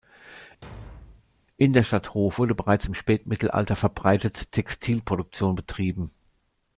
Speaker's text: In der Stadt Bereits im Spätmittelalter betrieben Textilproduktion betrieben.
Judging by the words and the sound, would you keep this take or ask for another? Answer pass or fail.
fail